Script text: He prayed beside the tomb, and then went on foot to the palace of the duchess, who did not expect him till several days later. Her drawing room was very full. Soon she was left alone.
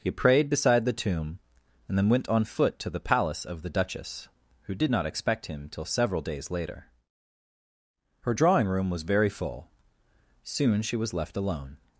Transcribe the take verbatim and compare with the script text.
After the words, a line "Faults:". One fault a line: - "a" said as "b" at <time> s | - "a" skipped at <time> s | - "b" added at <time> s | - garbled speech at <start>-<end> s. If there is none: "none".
He prayed beside the tomb, and then went on foot to the palace of the duchess, who did not expect him till several days later. Her drawing room was very full. Soon she was left alone.
Faults:
none